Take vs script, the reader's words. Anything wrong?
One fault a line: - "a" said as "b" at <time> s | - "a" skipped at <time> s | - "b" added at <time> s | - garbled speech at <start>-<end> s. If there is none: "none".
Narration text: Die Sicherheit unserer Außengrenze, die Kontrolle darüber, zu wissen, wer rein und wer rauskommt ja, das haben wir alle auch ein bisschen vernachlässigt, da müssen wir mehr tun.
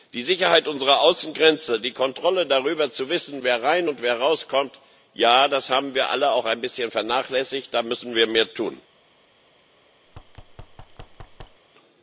none